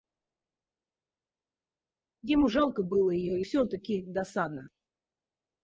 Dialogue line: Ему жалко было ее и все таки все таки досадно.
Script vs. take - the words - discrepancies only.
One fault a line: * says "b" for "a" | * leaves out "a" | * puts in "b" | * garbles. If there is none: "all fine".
* leaves out "все таки"